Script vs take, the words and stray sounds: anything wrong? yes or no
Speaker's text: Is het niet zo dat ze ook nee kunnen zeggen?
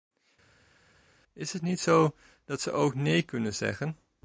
no